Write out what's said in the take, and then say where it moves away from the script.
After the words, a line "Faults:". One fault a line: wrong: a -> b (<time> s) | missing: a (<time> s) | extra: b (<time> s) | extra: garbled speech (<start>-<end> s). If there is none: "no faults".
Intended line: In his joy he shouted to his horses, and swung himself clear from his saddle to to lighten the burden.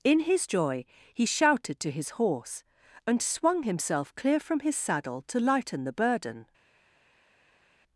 In his joy he shouted to his horse, and swung himself clear from his saddle to lighten the burden.
Faults:
wrong: horses -> horse (2.2 s)
missing: to (5.4 s)